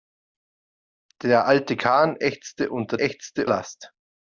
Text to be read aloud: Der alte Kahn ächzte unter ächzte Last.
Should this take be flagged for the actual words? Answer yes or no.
no